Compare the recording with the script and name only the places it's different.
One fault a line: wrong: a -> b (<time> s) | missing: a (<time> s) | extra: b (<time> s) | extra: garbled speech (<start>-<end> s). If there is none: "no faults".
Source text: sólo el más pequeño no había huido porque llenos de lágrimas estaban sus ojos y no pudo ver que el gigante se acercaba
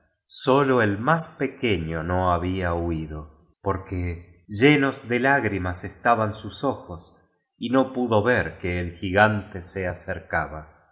no faults